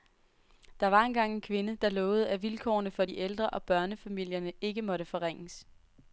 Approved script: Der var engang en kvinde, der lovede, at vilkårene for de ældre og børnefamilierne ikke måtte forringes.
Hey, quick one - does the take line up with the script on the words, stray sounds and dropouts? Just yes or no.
yes